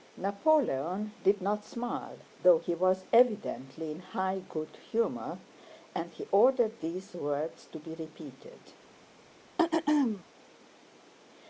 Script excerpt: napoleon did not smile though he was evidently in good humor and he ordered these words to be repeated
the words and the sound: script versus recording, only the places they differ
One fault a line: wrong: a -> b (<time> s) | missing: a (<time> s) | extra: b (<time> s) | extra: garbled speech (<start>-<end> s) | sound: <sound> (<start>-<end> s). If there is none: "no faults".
extra: high (4.0 s)
sound: throat clearing (9.6-10.2 s)